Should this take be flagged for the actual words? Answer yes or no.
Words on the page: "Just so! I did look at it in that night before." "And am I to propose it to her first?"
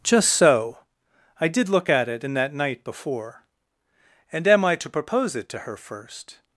no